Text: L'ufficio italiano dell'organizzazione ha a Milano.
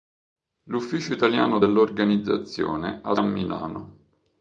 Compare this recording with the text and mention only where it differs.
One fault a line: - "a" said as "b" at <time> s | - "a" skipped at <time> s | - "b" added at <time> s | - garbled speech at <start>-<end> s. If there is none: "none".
none